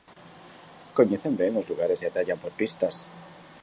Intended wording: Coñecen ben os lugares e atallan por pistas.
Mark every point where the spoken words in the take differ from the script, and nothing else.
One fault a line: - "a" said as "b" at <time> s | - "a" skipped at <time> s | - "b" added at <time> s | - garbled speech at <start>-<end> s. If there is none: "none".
none